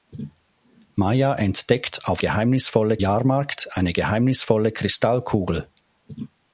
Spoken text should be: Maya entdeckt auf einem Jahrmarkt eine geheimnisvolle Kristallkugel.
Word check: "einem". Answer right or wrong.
wrong